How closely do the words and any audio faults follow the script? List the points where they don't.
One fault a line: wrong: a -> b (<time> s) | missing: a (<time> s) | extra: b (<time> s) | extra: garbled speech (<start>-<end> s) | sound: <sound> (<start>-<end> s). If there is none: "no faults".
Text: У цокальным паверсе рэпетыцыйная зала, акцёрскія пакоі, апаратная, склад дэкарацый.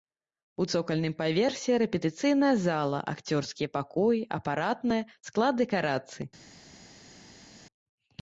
no faults